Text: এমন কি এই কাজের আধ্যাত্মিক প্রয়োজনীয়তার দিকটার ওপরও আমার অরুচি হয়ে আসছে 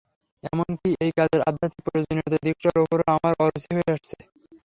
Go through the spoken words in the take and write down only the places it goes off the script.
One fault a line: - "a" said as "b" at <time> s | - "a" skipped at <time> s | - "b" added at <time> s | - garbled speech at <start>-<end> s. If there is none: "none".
none